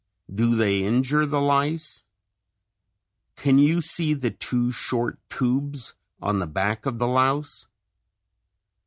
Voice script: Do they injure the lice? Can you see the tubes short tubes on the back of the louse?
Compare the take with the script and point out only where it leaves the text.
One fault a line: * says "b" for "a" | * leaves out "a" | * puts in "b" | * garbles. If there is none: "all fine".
* says "two" for "tubes"